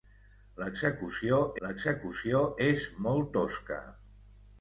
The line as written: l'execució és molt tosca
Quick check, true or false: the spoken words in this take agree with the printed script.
false